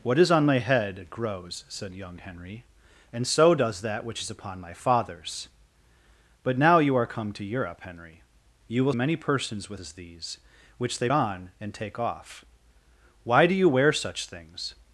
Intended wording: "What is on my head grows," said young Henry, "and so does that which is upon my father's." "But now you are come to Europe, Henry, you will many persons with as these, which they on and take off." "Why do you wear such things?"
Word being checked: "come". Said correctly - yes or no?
yes